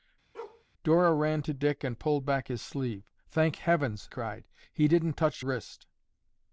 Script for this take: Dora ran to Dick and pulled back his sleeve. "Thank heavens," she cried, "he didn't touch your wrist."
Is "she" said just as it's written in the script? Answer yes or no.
no